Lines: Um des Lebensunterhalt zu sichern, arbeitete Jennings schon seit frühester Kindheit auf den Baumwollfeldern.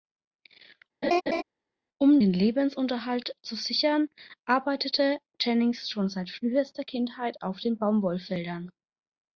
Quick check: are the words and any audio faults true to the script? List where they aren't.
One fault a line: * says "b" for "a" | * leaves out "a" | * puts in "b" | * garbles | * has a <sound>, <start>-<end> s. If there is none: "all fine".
* has a laugh, 1.0-1.4 s
* says "den" for "des"